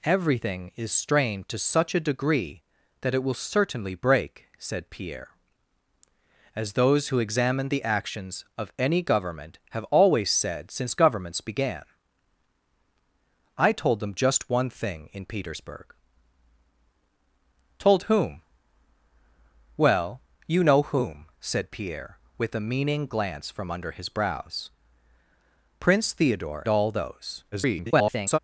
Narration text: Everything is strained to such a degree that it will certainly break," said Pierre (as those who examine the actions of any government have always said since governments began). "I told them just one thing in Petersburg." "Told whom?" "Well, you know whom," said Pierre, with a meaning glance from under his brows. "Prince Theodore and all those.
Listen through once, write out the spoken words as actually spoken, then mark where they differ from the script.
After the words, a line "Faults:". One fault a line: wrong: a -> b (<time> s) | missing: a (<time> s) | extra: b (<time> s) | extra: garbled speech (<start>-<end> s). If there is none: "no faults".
Everything is strained to such a degree that it will certainly break," said Pierre (as those who examine the actions of any government have always said since governments began). "I told them just one thing in Petersburg." "Told whom?" "Well, you know whom," said Pierre, with a meaning glance from under his brows. "Prince Theodore all those. [garbled]
Faults:
missing: and (26.6 s)
extra: garbled speech (27.5-28.4 s)